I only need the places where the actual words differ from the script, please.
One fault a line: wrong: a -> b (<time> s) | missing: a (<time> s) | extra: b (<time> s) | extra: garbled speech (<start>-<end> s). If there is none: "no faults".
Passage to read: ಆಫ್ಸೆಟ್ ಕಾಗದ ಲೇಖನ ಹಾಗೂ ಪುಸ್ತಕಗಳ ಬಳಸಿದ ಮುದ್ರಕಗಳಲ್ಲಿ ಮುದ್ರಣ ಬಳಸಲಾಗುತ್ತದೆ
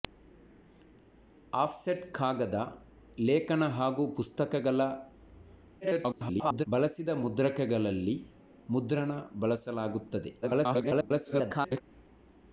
extra: garbled speech (5.8-6.7 s)
extra: garbled speech (10.4-11.8 s)